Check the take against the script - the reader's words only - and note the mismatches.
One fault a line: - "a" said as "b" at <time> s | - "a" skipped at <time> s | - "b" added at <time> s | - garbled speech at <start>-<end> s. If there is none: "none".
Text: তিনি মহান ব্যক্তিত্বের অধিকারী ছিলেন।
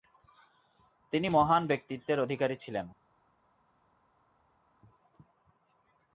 none